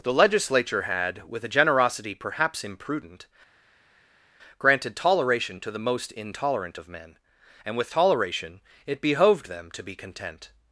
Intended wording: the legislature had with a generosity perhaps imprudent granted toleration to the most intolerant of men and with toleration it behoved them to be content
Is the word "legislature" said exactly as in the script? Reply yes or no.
yes